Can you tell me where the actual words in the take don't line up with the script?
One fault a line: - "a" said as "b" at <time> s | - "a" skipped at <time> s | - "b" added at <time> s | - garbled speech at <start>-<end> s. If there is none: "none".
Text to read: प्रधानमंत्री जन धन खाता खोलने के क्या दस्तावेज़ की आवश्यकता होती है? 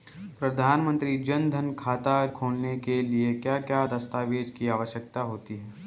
- "लिए क्या" added at 3.0 s